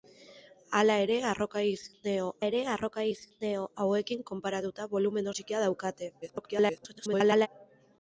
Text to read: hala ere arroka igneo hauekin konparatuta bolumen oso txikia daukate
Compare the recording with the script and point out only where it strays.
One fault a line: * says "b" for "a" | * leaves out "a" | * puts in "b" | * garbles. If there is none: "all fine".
* puts in "ere arroka igneo"
* leaves out "oso"
* garbles